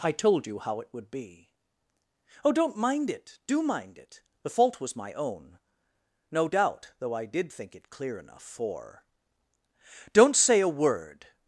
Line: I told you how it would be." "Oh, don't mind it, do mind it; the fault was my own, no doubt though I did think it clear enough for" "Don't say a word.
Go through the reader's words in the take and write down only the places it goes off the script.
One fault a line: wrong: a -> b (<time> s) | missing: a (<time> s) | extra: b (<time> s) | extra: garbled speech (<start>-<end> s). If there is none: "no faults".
no faults